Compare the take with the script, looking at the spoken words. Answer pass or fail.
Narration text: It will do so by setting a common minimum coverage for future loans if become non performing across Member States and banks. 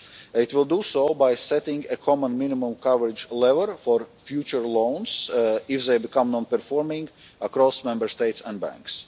fail